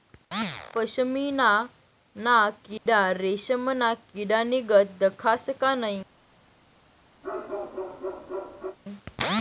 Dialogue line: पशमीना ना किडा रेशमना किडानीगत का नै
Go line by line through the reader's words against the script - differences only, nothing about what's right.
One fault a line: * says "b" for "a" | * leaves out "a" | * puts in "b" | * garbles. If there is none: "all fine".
* puts in "दखास"